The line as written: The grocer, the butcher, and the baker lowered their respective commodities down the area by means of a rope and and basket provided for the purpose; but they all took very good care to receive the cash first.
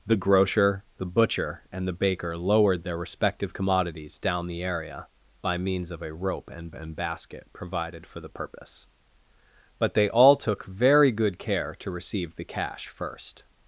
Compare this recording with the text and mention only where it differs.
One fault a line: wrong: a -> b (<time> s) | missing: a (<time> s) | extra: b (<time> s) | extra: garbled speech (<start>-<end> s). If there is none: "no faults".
no faults